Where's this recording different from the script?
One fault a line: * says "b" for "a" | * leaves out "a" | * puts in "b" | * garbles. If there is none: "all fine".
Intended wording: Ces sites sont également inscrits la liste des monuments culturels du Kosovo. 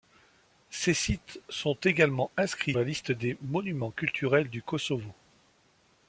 all fine